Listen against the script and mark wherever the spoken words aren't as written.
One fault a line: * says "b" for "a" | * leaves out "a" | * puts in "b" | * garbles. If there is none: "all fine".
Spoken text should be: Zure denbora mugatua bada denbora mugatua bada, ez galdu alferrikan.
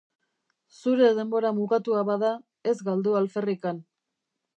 * leaves out "denbora mugatua bada"